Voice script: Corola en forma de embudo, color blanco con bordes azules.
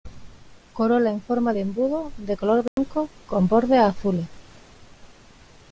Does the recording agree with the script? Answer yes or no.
no